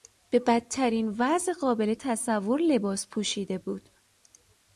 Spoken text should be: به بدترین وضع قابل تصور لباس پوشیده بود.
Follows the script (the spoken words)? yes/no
yes